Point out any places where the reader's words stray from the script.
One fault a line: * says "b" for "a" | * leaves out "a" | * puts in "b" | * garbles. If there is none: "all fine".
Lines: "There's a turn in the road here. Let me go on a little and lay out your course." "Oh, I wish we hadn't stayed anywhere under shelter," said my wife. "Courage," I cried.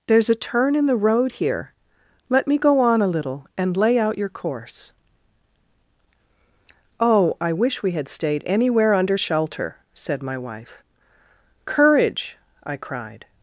* says "had" for "hadn't"